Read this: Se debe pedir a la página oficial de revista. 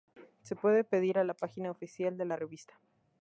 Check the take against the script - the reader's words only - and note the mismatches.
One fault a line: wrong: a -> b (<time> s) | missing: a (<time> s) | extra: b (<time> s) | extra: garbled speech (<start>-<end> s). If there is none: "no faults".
wrong: debe -> puede (0.6 s)
extra: la (2.2 s)